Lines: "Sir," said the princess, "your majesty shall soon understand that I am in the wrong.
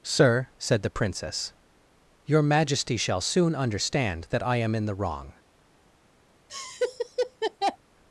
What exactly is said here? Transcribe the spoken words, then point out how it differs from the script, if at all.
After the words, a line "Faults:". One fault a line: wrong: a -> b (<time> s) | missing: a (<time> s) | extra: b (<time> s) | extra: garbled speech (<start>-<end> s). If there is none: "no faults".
"Sir," said the princess, "your majesty shall soon understand that I am in the wrong.
Faults:
no faults